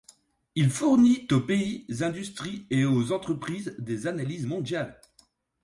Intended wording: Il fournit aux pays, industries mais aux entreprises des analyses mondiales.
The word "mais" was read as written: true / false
false